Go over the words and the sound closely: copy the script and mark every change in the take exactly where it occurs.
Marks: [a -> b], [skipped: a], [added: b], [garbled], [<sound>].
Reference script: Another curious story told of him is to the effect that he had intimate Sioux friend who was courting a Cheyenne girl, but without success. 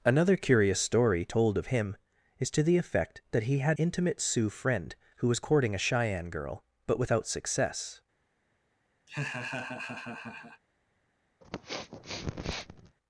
Another curious story told of him is to the effect that he had intimate Sioux friend who was courting a Cheyenne girl, but without success. [laugh] [sniff]